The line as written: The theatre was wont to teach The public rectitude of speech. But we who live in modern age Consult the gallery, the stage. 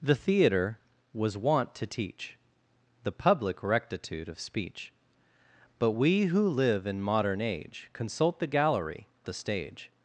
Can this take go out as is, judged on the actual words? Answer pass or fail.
pass